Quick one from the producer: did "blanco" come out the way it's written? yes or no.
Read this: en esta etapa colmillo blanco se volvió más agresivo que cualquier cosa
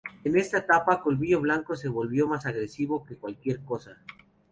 yes